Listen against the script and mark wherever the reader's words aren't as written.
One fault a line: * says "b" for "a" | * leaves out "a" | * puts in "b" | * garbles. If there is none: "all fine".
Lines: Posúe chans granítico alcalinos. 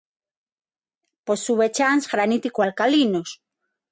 all fine